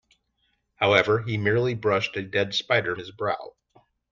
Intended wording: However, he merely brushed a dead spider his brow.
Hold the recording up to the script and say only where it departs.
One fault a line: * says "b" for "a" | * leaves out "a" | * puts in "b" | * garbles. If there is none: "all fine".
all fine